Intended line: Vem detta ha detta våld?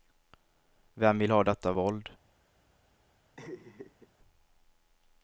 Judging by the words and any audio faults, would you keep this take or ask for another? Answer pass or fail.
fail